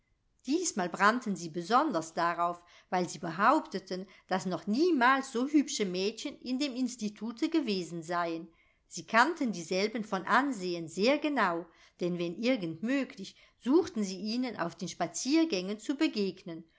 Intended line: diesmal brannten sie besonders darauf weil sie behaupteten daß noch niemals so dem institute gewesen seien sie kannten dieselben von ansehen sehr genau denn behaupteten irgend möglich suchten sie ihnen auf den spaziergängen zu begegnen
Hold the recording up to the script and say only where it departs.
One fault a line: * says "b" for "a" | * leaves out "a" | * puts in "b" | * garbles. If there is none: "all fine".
* puts in "hübsche mädchen in"
* says "wenn" for "behaupteten"